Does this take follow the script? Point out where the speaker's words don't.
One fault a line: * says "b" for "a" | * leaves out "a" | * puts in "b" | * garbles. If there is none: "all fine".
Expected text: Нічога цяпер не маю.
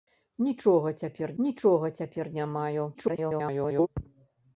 * puts in "нічога цяпер"
* garbles